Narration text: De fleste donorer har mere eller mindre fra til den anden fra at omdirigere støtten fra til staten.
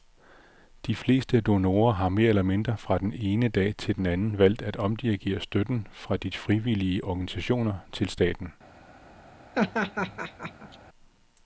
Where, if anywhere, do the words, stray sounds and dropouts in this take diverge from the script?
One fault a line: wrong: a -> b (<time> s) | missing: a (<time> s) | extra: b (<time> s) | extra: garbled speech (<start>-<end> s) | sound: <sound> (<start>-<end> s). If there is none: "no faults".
extra: den ene dag (3.0 s)
wrong: fra -> valgt (4.4 s)
extra: de frivillige organisationer (6.2 s)
sound: laugh (9.5-10.8 s)